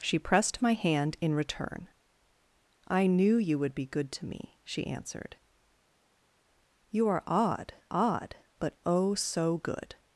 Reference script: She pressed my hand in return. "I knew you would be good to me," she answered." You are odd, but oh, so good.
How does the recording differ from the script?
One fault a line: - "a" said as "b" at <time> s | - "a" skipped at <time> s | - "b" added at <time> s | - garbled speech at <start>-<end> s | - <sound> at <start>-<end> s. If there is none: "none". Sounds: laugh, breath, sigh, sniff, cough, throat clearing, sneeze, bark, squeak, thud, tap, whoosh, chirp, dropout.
- "odd" added at 7.9 s